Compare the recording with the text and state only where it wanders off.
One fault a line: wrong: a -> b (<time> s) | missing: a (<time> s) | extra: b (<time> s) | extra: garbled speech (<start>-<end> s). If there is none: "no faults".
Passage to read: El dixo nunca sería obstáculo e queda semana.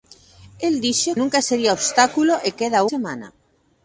no faults